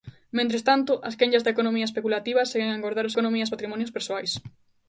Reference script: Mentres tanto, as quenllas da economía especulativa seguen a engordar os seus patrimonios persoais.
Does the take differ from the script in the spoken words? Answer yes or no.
yes